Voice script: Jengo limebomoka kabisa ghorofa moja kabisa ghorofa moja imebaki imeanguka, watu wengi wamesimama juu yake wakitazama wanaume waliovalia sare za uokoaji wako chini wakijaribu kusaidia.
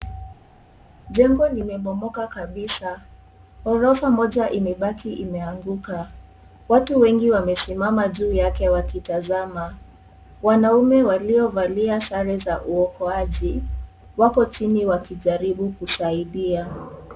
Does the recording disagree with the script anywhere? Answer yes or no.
yes